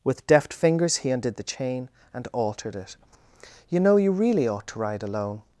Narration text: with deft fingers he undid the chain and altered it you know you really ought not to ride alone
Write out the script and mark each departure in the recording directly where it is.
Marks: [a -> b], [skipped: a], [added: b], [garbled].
with deft fingers he undid the chain and altered it you know you really ought [skipped: not] to ride alone